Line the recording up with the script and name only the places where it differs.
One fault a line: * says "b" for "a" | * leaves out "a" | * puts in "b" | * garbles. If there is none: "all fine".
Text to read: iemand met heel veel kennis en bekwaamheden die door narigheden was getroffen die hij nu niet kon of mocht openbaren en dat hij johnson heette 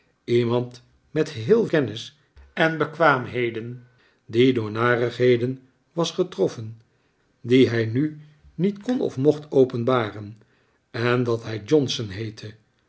* leaves out "veel"